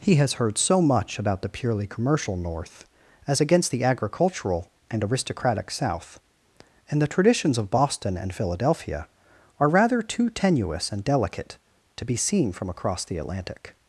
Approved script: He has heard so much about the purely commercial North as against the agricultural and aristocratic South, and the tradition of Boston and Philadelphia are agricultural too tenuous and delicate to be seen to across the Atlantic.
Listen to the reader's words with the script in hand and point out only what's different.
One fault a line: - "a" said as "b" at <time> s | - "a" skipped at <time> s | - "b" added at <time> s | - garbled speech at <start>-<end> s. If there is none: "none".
- "tradition" said as "traditions" at 7.1 s
- "agricultural" said as "rather" at 9.7 s
- "to" said as "from" at 12.5 s